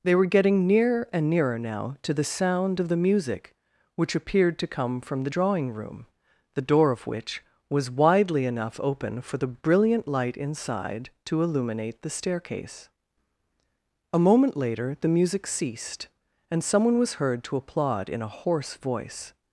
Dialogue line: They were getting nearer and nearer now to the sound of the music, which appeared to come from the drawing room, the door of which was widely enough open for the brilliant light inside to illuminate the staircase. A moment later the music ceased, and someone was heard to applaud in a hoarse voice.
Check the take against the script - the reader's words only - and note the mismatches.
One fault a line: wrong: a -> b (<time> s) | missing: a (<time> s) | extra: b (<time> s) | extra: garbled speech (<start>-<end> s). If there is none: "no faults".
no faults